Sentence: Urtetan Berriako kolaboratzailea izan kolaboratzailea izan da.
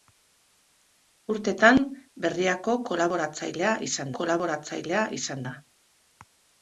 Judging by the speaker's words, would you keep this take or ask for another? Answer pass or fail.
pass